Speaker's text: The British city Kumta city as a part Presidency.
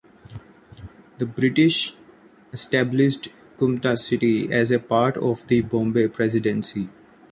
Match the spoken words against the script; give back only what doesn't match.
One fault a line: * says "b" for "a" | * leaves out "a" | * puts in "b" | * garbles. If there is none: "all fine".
* says "established" for "city"
* puts in "of the Bombay"